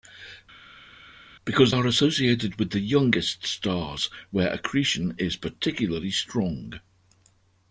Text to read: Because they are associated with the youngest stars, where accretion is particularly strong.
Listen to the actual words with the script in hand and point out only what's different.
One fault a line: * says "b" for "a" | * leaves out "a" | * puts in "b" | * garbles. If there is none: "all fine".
* leaves out "they"